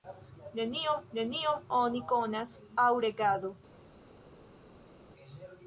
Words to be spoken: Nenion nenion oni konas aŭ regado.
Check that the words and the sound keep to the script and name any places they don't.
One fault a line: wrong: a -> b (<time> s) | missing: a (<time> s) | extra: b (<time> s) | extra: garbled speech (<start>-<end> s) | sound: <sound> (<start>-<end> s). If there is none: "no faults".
no faults